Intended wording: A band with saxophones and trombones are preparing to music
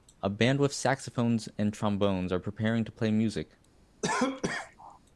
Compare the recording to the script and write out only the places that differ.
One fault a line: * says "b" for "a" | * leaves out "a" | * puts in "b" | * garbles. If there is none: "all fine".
* puts in "play"